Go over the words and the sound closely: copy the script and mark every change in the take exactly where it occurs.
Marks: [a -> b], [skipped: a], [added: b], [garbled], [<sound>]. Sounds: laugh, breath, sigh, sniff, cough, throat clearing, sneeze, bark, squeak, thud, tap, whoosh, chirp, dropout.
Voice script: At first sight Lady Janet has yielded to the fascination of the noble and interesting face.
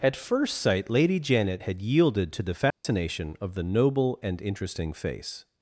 At first sight Lady Janet [has -> had] yielded to the fascination [dropout] of the noble and interesting face.